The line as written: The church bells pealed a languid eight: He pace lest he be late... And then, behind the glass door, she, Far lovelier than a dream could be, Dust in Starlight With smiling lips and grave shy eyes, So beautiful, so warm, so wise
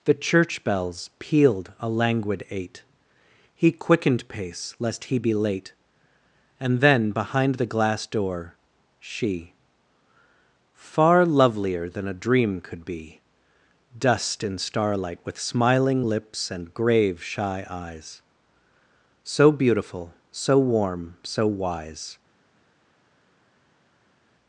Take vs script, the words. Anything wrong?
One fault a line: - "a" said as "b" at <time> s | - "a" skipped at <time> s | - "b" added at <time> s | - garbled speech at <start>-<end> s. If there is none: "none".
- "quickened" added at 3.7 s